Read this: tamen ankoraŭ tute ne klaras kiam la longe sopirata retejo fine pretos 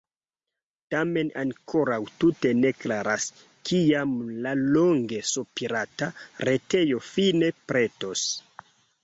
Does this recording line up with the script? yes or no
yes